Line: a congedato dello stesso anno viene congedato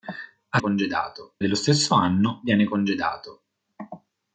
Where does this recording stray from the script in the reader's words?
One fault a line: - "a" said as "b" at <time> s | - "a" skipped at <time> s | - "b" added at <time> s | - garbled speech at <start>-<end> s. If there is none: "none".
none